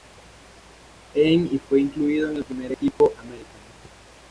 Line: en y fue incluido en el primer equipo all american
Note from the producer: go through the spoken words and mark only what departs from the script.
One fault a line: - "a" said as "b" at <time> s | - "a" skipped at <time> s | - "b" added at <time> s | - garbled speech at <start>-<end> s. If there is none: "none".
- "all" skipped at 3.1 s